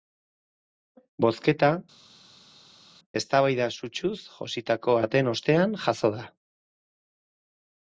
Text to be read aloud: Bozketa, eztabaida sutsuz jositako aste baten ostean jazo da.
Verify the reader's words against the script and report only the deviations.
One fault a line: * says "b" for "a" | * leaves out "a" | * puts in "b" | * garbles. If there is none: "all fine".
* leaves out "aste"